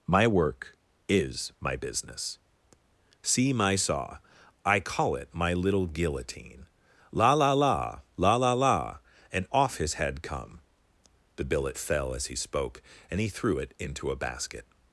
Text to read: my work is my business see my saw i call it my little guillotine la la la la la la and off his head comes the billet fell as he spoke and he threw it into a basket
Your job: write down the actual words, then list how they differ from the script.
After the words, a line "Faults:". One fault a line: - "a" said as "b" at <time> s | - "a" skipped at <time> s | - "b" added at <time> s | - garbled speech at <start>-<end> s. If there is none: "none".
my work is my business see my saw i call it my little guillotine la la la la la la and off his head come the billet fell as he spoke and he threw it into a basket
Faults:
- "comes" said as "come" at 10.2 s